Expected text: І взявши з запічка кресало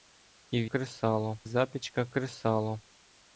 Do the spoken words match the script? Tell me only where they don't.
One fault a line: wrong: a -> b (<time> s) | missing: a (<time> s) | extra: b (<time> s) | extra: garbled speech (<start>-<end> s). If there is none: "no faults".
wrong: взявши -> кресало (0.6 s)